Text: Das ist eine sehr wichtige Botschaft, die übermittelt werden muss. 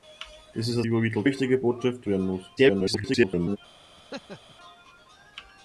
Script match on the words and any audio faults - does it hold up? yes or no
no